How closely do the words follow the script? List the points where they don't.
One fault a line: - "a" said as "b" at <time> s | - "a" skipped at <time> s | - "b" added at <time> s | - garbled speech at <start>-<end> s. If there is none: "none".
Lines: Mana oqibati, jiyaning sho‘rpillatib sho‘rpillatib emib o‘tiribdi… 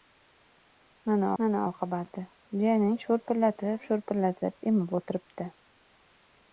- "mana" added at 1.4 s